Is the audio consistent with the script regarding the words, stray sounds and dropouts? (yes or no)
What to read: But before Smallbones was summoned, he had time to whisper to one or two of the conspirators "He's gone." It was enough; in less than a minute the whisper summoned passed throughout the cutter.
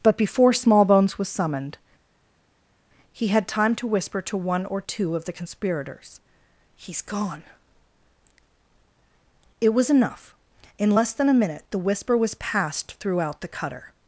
no